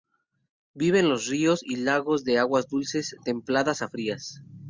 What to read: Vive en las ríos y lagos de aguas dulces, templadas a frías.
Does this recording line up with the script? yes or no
no